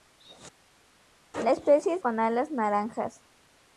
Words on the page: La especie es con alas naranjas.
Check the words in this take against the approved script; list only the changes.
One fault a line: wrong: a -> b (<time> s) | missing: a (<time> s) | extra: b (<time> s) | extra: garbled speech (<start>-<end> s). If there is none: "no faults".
no faults